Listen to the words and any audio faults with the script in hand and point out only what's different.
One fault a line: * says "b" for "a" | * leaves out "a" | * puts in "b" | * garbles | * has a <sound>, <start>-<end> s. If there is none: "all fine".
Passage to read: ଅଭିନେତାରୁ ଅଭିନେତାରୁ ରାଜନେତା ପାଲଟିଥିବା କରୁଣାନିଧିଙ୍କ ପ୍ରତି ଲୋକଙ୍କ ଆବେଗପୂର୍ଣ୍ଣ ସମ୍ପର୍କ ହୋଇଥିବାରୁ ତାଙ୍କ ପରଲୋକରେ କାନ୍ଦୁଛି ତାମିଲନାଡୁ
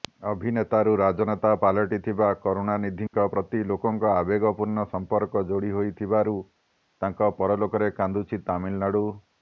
* leaves out "ଅଭିନେତାରୁ"
* has a dropout, 3.1-3.1 s
* puts in "ଯୋଡି"